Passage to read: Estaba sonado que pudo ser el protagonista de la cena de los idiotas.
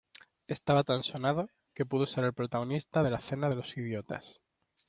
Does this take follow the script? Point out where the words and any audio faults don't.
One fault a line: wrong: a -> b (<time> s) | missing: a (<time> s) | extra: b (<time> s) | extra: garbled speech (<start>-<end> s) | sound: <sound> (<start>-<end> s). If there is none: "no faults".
extra: tan (0.8 s)